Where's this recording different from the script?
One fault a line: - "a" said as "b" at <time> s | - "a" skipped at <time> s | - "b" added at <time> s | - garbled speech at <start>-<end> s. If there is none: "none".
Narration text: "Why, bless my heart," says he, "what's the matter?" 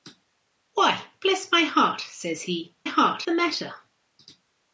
- "what's" said as "heart" at 2.8 s